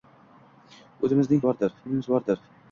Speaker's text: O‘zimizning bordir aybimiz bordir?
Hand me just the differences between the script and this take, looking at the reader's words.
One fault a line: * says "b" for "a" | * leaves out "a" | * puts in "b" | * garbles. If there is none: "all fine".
all fine